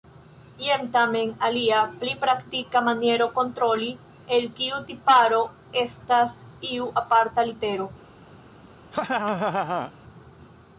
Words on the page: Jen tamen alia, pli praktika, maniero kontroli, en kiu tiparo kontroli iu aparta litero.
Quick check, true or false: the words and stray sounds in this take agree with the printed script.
false